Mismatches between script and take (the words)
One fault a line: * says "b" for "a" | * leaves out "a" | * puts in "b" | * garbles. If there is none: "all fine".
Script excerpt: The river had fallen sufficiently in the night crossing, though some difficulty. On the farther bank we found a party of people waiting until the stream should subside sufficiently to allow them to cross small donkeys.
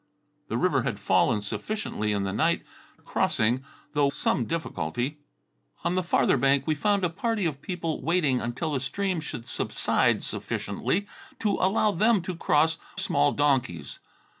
all fine